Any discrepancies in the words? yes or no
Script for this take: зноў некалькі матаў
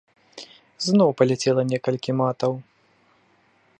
yes